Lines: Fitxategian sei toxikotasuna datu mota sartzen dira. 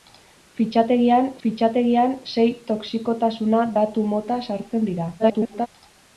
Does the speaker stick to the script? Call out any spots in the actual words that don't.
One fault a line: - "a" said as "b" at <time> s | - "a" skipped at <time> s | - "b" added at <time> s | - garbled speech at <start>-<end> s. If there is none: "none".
- "fitxategian" added at 1.4 s
- garbled speech at 5.2-5.7 s